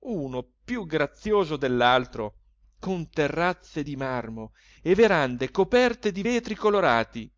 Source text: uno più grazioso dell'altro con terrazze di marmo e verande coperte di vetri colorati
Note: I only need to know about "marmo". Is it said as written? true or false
true